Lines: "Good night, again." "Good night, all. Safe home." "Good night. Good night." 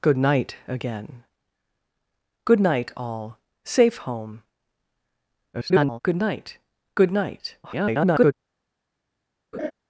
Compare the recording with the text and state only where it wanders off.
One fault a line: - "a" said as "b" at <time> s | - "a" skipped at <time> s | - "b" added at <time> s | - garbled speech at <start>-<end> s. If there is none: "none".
- garbled speech at 5.5-6.0 s
- garbled speech at 7.6-8.3 s